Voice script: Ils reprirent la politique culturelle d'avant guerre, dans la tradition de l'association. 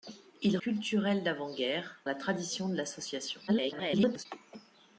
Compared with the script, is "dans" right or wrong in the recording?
wrong